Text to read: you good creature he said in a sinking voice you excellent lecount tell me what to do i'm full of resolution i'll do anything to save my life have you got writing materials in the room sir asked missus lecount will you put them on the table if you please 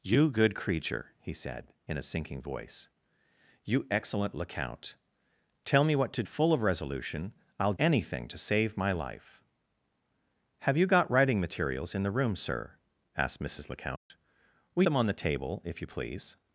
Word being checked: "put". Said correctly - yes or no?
no